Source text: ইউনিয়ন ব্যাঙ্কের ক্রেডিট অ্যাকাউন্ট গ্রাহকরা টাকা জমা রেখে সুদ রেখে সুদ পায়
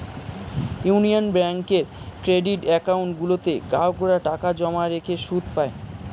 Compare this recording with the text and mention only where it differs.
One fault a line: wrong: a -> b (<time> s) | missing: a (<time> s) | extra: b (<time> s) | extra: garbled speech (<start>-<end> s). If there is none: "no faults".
extra: গুলোতে (3.2 s)
missing: রেখে সুদ (5.4 s)